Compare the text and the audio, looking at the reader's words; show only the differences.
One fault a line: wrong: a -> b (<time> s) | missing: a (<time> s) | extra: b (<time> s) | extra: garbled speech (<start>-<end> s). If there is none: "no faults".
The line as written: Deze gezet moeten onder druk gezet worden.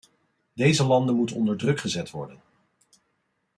wrong: gezet -> landen (0.8 s)